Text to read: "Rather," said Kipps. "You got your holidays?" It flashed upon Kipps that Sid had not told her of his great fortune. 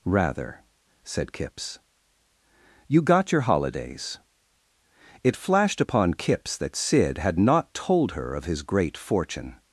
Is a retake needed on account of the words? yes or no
no